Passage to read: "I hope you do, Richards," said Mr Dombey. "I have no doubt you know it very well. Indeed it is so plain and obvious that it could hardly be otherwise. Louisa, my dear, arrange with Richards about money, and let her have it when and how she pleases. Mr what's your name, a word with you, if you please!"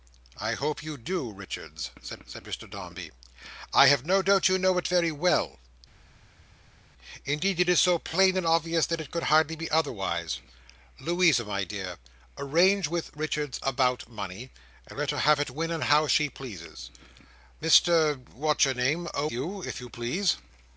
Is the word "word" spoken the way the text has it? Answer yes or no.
no